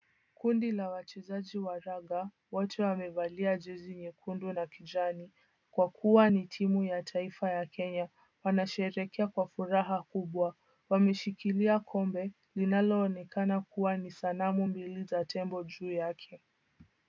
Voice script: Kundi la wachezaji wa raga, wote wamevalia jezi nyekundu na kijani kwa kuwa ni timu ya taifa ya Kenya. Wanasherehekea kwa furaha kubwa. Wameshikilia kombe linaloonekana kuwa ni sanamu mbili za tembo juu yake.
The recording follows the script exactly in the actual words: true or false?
true